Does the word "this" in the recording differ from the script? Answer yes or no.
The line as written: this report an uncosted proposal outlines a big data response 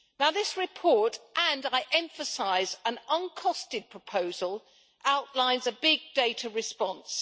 no